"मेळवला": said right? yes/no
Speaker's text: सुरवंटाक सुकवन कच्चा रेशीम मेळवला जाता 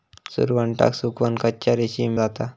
no